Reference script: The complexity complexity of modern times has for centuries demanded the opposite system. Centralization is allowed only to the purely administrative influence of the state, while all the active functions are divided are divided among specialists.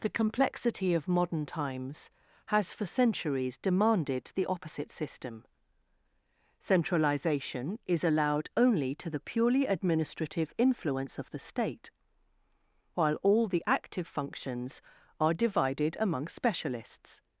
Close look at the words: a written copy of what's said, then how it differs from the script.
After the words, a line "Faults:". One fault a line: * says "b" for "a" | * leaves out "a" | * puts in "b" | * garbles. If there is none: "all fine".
The complexity of modern times has for centuries demanded the opposite system. Centralization is allowed only to the purely administrative influence of the state, while all the active functions are divided among specialists.
Faults:
* leaves out "complexity"
* leaves out "are divided"